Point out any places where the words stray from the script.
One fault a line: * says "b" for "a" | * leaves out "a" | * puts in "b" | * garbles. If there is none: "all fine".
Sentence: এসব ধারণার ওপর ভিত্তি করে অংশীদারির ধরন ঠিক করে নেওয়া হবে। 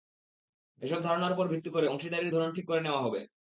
all fine